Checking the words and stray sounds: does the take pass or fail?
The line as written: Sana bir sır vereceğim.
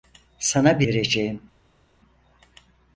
fail